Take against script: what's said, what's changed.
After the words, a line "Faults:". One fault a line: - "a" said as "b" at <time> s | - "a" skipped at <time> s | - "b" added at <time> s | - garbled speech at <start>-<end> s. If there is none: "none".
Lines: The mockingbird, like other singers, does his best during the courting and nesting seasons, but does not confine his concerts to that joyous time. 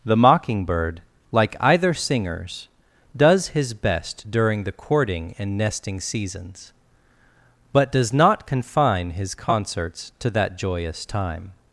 The mockingbird, like either singers, does his best during the courting and nesting seasons, but does not confine his concerts to that joyous time.
Faults:
- "other" said as "either" at 1.6 s